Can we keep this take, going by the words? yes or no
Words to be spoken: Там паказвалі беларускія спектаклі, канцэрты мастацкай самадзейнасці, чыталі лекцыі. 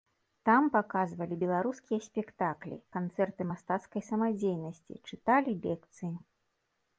yes